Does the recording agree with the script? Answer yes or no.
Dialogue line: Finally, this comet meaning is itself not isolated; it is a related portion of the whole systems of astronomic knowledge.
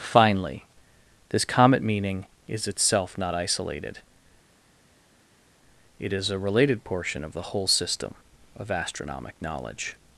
no